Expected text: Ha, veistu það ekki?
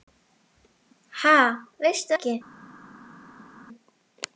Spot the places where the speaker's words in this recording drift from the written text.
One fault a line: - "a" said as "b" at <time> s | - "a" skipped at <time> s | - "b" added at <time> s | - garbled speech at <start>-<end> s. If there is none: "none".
- "það" skipped at 2.1 s